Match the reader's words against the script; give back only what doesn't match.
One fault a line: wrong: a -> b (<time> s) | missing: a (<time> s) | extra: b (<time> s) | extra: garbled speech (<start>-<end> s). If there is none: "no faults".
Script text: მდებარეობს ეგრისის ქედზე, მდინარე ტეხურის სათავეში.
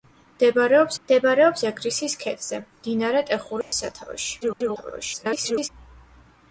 extra: მდებარეობს (1.0 s)
extra: garbled speech (4.4-5.7 s)